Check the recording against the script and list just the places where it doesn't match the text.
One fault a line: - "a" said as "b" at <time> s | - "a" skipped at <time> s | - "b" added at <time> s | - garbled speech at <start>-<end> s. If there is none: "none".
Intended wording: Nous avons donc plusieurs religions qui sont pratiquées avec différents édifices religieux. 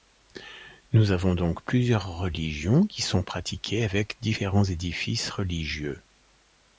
none